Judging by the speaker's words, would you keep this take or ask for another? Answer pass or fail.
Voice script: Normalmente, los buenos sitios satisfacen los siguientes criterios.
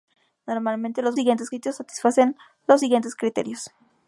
fail